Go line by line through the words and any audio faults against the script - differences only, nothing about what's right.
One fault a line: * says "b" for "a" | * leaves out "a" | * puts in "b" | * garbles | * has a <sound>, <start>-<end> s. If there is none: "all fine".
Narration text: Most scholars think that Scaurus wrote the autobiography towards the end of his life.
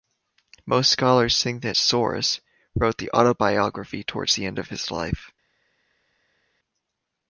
all fine